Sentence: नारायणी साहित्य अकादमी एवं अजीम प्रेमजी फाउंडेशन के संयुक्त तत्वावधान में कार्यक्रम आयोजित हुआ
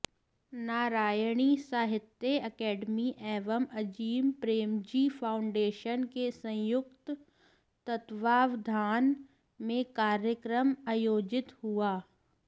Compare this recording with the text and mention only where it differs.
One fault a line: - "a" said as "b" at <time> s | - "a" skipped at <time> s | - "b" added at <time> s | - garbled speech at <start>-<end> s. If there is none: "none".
none